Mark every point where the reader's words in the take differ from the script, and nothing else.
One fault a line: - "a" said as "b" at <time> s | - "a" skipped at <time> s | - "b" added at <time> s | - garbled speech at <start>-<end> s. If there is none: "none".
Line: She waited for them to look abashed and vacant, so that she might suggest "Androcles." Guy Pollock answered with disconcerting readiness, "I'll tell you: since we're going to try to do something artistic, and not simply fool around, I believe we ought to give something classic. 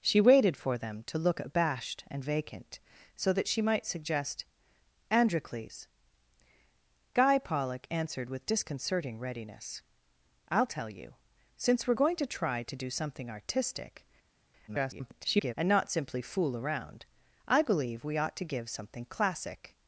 - garbled speech at 14.7-15.5 s